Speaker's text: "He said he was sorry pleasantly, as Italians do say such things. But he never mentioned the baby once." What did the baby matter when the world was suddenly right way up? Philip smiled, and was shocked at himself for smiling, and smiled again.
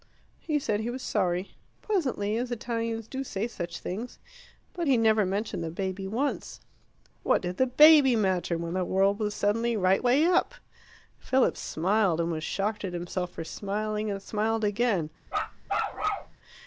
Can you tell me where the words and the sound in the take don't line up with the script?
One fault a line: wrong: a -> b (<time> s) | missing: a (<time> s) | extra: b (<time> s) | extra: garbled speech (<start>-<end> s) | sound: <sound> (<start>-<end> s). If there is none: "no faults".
sound: bark (15.3-16.4 s)